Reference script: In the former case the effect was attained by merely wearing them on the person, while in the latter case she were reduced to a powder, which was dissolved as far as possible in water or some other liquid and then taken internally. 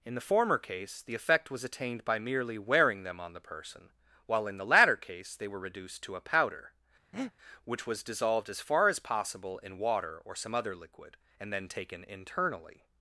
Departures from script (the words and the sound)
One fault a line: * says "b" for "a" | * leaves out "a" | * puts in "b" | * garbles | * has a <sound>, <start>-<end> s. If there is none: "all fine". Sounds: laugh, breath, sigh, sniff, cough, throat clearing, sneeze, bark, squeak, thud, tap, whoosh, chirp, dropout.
* says "they" for "she"
* has a breath, 7.1-7.3 s